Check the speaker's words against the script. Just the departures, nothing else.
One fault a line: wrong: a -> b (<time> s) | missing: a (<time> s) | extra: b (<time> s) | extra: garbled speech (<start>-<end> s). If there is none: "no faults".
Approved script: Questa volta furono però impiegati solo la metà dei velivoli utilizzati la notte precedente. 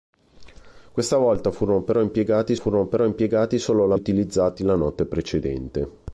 wrong: solo la metà dei velivoli -> furono però impiegati solo la (2.6 s)